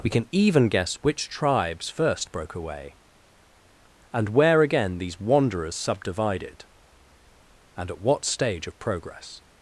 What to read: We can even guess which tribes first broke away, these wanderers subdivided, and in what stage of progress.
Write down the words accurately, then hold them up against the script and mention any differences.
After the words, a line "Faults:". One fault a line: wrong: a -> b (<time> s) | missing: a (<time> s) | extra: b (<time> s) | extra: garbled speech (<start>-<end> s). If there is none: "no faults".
We can even guess which tribes first broke away, and where again these wanderers subdivided, and at what stage of progress.
Faults:
extra: and where again (4.1 s)
wrong: in -> at (7.9 s)